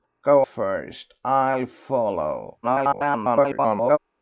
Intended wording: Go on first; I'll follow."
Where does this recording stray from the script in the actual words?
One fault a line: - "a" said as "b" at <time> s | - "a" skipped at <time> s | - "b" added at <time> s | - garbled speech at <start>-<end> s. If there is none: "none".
- "on" skipped at 0.4 s
- garbled speech at 2.6-4.0 s